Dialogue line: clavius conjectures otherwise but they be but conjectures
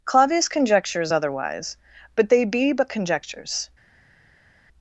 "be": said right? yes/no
yes